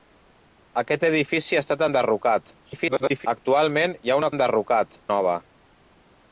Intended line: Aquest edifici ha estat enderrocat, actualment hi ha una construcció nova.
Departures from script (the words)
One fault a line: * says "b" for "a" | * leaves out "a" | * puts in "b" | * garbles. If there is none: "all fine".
* garbles
* says "enderrocat" for "construcció"